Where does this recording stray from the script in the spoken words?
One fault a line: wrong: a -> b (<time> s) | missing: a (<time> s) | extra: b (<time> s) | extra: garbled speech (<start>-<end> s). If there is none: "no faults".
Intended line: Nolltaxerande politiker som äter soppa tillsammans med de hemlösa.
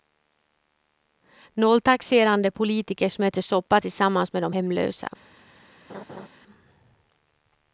no faults